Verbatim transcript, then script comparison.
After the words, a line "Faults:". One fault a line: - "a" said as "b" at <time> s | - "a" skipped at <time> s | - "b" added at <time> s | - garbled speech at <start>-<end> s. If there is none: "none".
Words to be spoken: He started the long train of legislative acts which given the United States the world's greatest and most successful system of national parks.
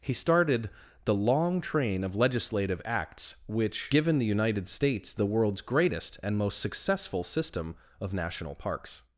He started the long train of legislative acts which given the United States the world's greatest and most successful system of national parks.
Faults:
none